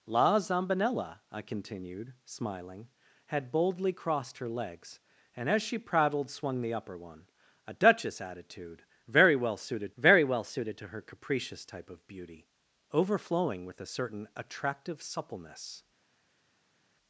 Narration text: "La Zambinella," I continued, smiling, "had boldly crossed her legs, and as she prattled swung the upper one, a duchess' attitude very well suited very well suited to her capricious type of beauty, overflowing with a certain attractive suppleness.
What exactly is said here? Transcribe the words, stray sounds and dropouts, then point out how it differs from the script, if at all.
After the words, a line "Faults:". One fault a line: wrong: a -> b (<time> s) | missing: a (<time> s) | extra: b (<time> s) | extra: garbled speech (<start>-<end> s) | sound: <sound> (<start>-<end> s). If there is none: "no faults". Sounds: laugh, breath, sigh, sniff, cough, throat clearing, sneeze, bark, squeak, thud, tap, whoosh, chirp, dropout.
"La Zambinella," I continued, smiling, "had boldly crossed her legs, and as she prattled swung the upper one, a duchess' attitude very well suited very well suited to her capricious type of beauty, overflowing with a certain attractive suppleness.
Faults:
no faults